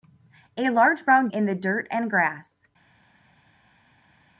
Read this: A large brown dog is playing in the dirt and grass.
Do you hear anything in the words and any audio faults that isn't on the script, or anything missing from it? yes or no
yes